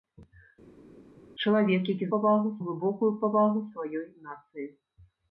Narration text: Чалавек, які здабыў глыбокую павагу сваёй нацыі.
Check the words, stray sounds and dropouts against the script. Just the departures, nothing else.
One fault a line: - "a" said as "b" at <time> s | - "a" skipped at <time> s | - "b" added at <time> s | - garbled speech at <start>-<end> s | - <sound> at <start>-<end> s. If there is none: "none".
- "здабыў" said as "павагу" at 2.2 s